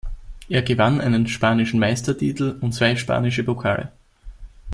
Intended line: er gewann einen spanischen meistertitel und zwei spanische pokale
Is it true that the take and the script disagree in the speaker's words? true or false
false